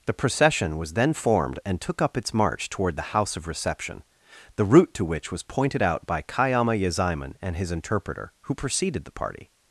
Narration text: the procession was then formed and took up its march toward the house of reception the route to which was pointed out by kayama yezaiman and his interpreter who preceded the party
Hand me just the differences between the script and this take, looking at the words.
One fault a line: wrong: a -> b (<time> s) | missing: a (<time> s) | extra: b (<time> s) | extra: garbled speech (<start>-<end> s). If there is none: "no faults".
no faults